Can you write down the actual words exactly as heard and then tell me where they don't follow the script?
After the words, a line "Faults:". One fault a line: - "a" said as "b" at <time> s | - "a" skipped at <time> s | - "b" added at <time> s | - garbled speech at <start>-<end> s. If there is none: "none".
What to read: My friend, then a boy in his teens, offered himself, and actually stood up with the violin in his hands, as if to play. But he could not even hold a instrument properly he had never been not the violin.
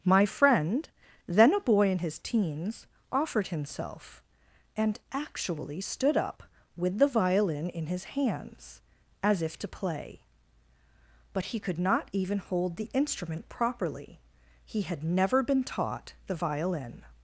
My friend, then a boy in his teens, offered himself, and actually stood up with the violin in his hands, as if to play. But he could not even hold the instrument properly he had never been taught the violin.
Faults:
- "a" said as "the" at 12.8 s
- "not" said as "taught" at 15.6 s